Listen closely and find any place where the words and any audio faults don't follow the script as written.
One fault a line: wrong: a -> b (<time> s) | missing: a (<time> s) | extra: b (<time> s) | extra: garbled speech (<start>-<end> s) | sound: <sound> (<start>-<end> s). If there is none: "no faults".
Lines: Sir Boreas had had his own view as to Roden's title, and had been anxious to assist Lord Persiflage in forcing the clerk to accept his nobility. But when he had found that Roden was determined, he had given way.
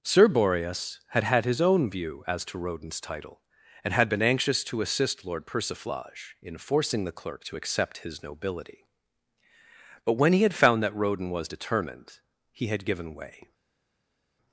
no faults